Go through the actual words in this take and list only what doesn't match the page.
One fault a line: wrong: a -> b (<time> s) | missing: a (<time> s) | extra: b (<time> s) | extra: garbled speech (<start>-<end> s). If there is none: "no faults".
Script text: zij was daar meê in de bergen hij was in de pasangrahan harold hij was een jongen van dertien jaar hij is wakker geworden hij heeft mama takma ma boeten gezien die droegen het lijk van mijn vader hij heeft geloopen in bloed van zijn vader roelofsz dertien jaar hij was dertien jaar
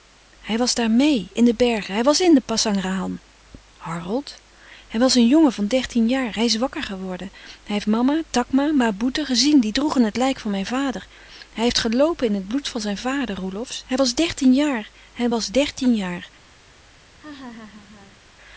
wrong: zij -> hij (0.4 s)
extra: het (12.3 s)
extra: hij was (13.8 s)